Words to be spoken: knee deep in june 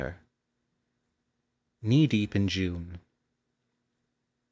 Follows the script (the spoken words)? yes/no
yes